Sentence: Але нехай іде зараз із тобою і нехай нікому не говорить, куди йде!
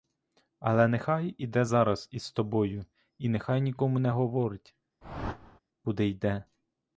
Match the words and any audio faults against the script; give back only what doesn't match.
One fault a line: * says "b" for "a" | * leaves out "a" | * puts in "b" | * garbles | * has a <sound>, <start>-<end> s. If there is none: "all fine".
* has a whoosh, 5.0-5.6 s